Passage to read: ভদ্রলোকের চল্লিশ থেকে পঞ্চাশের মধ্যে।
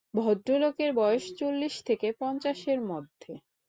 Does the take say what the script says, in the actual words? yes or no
no